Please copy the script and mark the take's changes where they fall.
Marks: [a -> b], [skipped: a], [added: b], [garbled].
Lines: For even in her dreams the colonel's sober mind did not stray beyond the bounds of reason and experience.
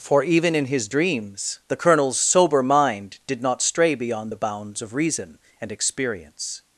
For even in [her -> his] dreams the colonel's sober mind did not stray beyond the bounds of reason and experience.